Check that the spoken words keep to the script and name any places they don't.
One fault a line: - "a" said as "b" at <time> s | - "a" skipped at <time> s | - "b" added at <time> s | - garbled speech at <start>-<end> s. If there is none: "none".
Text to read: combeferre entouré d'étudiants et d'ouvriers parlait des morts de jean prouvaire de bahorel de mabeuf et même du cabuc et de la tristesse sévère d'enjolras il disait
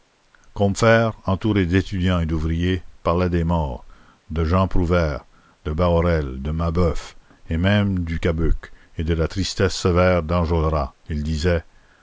none